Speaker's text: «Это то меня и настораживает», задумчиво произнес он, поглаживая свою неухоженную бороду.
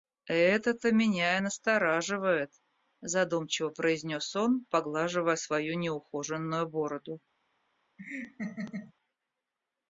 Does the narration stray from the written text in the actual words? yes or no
no